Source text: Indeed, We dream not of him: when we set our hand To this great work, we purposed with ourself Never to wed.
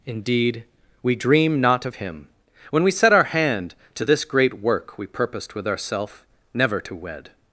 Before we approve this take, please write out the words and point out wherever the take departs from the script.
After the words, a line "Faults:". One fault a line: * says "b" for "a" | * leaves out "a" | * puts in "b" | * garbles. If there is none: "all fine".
Indeed, We dream not of him: when we set our hand To this great work, we purposed with ourself Never to wed.
Faults:
all fine